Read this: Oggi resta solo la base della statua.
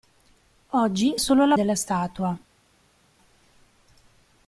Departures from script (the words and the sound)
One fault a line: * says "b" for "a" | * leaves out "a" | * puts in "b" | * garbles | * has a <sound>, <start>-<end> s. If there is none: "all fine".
* leaves out "resta"
* leaves out "base"